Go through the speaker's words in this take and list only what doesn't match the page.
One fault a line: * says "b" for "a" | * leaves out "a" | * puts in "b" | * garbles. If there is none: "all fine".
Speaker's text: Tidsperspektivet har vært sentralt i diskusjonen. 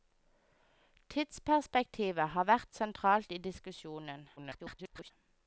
* garbles